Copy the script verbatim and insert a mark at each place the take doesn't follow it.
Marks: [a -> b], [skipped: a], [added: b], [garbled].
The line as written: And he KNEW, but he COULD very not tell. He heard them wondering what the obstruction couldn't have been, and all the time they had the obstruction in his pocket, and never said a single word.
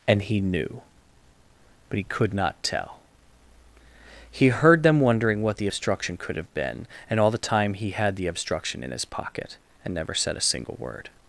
And he KNEW, but he COULD [skipped: very] not tell. He heard them wondering what the obstruction [couldn't -> could] have been, and all the time [they -> he] had the obstruction in his pocket, and never said a single word.